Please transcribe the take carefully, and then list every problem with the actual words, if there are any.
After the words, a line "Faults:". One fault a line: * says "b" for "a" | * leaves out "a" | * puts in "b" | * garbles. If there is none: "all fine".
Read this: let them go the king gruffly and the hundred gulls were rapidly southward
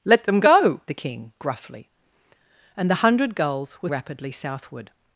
let them go the king gruffly and the hundred gulls were rapidly southward
Faults:
all fine